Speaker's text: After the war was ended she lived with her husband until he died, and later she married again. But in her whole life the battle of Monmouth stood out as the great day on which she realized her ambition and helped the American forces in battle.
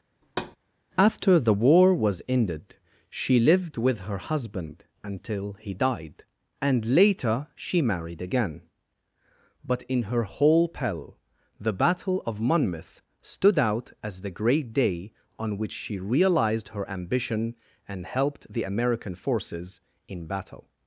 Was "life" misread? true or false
true